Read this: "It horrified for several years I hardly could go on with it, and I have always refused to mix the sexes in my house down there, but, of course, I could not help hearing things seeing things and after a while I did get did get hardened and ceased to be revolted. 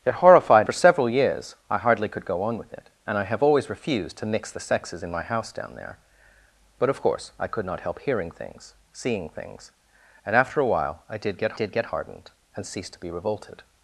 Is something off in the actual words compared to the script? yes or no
no